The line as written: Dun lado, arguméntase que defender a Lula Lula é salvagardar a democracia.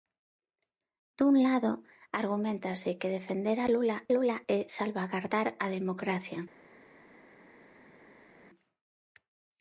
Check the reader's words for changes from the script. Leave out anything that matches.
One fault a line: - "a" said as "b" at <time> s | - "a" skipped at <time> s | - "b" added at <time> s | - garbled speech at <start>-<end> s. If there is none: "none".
none